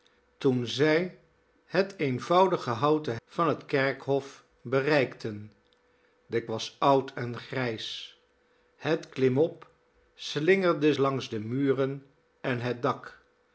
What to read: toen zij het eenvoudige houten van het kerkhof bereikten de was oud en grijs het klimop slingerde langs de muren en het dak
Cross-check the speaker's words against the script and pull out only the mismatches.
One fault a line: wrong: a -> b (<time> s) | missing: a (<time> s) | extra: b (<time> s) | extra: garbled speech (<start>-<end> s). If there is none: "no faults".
no faults